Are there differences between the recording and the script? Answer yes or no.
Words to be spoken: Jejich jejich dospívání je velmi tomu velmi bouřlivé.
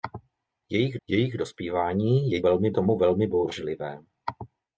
no